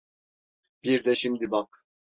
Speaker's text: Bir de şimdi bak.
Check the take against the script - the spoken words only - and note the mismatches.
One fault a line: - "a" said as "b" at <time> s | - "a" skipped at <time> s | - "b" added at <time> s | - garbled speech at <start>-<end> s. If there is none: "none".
none